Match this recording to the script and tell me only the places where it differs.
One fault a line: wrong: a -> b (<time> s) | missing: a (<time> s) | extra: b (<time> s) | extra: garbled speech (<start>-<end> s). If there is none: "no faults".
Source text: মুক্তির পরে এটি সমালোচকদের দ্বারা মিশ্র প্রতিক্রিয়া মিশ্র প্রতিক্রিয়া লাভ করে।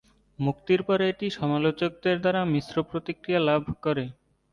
missing: মিশ্র প্রতিক্রিয়া (3.4 s)